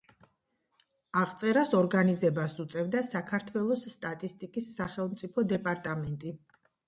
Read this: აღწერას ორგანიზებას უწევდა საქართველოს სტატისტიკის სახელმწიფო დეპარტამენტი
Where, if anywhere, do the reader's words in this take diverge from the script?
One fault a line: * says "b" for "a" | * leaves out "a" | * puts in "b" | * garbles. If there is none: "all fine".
all fine